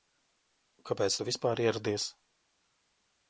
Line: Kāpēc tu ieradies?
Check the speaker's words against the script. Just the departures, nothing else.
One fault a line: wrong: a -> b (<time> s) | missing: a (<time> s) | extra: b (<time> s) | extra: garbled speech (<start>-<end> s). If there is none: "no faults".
extra: vispār (1.3 s)